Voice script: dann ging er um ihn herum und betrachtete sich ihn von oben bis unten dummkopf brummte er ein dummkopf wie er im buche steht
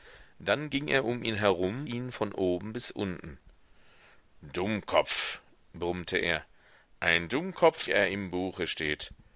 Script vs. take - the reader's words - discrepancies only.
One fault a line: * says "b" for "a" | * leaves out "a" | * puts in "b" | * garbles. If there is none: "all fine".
* leaves out "und betrachtete sich"
* leaves out "wie"